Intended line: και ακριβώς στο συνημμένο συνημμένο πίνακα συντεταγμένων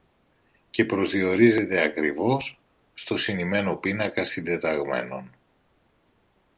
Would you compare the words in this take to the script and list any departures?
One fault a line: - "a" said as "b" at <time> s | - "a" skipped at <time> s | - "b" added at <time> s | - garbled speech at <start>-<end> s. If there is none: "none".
- "προσδιορίζεται" added at 0.8 s
- "συνημμένο" skipped at 3.8 s